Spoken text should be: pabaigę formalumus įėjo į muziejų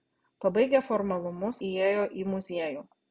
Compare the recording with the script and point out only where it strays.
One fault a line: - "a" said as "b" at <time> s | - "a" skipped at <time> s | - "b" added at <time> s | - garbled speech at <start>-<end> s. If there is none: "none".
none